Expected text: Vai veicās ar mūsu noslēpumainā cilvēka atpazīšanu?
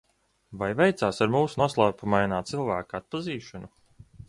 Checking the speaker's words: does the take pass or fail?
pass